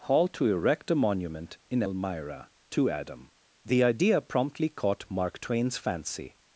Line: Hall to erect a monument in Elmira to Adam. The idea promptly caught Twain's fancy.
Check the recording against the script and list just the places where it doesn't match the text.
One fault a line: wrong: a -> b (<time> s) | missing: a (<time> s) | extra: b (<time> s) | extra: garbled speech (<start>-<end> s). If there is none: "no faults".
extra: Mark (5.1 s)